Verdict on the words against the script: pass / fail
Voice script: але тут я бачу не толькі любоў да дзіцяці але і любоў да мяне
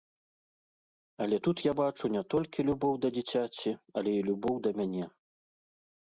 pass